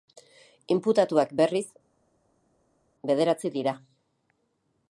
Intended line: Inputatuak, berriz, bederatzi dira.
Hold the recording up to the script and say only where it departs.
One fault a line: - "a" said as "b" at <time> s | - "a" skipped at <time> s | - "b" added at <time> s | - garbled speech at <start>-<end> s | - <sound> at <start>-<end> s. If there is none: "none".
none